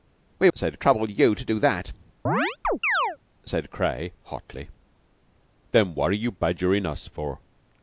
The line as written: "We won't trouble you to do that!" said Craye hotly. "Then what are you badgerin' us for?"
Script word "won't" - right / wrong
wrong